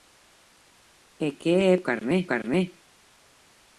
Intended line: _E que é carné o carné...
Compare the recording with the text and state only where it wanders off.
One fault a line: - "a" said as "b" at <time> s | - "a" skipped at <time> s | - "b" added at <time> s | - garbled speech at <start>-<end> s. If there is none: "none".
none